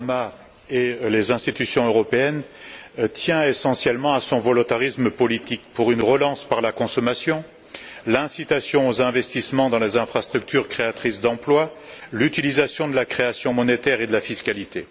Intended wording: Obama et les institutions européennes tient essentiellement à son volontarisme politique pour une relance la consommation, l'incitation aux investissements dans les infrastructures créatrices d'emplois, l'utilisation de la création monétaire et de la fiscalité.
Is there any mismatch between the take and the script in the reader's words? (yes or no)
yes